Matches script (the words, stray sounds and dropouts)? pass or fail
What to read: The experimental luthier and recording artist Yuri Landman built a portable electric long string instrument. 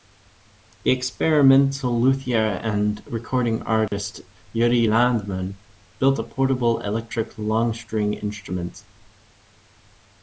fail